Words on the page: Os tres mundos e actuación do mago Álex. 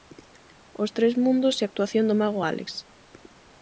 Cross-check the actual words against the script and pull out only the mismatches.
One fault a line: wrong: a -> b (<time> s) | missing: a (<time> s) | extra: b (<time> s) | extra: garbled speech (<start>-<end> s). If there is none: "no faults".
no faults